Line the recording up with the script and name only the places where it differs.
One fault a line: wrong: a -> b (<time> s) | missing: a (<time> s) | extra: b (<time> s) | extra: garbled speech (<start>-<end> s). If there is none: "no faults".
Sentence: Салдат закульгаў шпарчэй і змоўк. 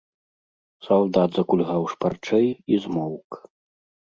no faults